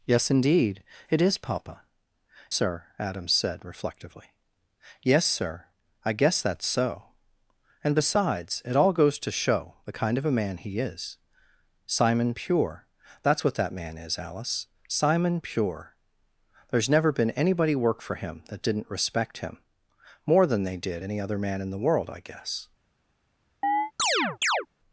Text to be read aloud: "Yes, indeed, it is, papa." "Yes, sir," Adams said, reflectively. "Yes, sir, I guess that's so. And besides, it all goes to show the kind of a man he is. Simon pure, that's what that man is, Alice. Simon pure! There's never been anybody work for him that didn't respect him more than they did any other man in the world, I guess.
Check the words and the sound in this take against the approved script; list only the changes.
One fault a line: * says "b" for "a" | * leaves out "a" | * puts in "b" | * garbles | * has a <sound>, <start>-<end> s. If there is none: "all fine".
* leaves out "Yes"
* has a chirp, 23.6-24.7 s